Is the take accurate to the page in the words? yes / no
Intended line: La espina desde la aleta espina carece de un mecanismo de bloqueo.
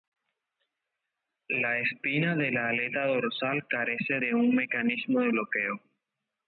no